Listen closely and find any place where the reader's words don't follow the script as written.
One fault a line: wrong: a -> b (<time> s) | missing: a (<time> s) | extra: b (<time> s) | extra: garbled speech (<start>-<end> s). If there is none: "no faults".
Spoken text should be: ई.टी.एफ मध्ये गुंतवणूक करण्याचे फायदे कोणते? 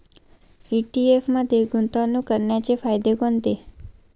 no faults